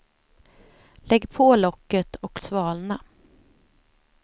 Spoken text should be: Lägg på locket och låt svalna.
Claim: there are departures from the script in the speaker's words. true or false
true